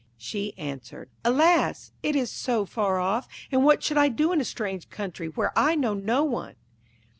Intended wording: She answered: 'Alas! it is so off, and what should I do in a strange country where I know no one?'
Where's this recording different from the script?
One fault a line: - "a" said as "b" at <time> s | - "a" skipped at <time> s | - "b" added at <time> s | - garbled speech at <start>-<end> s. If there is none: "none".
- "far" added at 2.6 s